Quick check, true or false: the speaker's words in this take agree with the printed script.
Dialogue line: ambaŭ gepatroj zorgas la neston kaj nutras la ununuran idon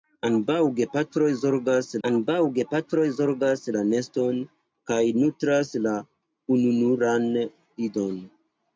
false